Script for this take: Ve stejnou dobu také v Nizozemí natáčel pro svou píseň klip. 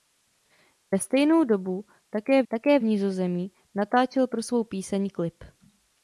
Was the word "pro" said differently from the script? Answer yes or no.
no